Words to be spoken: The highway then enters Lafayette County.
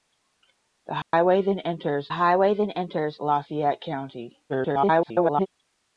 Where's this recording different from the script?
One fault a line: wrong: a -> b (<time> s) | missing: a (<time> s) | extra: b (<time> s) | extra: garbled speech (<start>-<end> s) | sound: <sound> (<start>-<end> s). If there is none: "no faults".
sound: dropout (1.0-1.1 s)
extra: highway then enters (2.1 s)
extra: garbled speech (4.5-5.5 s)